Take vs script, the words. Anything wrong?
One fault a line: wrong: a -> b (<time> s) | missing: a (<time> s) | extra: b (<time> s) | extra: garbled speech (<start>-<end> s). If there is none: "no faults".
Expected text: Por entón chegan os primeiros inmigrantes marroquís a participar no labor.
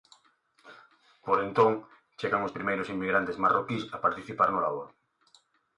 no faults